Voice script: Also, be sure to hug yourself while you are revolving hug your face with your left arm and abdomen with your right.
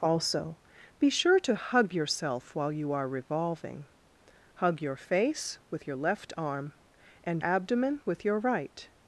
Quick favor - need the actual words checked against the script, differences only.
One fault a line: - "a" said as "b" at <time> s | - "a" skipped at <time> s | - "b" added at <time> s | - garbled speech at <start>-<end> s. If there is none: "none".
none